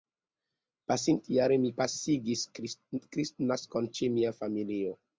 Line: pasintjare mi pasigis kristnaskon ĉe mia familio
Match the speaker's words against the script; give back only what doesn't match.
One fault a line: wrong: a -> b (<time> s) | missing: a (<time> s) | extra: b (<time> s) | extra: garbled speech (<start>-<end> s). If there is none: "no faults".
no faults